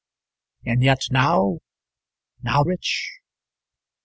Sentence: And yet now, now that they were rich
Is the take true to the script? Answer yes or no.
no